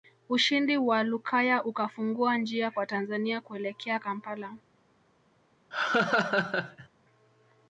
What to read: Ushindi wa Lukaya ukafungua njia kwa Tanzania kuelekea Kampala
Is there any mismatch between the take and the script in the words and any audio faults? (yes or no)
yes